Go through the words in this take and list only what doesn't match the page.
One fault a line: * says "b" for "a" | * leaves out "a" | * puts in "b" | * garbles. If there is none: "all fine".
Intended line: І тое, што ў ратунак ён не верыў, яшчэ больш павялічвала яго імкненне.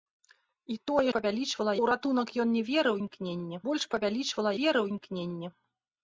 * says "павялічвала" for "што"
* says "імкненне" for "яшчэ"
* says "верыў" for "яго"